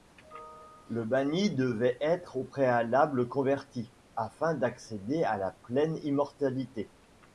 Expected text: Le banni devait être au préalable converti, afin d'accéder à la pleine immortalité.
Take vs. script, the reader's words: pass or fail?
pass